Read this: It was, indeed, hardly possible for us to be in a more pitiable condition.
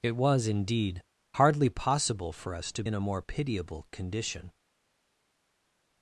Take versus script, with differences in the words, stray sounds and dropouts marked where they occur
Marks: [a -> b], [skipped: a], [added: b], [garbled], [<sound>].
It was, indeed, hardly possible for us to [skipped: be] in a more pitiable condition.